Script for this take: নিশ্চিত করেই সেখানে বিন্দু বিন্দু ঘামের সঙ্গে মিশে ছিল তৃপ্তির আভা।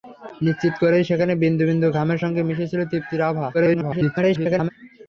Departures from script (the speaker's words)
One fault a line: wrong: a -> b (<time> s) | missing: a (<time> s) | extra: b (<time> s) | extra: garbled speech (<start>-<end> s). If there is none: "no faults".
extra: garbled speech (3.5-4.7 s)